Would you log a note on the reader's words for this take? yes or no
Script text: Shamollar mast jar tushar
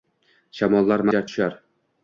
yes